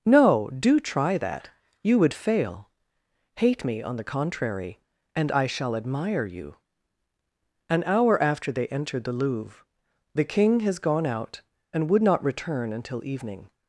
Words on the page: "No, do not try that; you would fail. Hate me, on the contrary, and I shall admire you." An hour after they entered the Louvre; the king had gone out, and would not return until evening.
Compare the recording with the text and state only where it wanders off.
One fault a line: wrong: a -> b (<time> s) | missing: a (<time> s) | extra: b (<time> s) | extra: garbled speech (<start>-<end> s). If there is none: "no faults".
missing: not (0.8 s)
wrong: had -> has (10.6 s)